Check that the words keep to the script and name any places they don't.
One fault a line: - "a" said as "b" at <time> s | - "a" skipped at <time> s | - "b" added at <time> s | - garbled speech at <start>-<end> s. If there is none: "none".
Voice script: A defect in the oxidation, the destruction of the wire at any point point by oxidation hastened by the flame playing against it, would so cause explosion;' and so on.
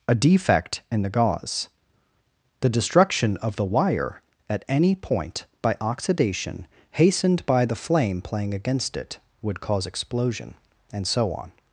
- "oxidation" said as "gauze" at 1.1 s
- "point" skipped at 5.4 s
- "so" skipped at 9.6 s